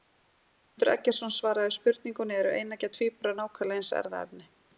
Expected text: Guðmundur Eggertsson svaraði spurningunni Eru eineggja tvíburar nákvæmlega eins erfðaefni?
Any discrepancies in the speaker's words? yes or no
no